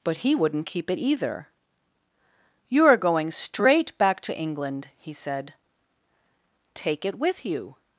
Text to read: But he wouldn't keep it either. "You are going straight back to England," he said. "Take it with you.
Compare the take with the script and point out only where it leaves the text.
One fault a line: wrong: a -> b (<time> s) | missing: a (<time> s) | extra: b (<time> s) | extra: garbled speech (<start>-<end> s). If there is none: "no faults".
no faults